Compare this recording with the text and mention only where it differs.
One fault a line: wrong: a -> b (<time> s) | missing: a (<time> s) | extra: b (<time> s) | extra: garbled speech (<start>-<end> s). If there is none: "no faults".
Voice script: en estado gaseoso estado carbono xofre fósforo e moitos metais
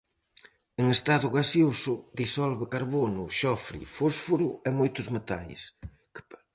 wrong: estado -> disolve (2.2 s)